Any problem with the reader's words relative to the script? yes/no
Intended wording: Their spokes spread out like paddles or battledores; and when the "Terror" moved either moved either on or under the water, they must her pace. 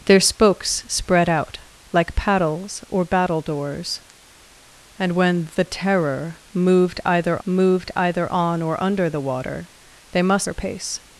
no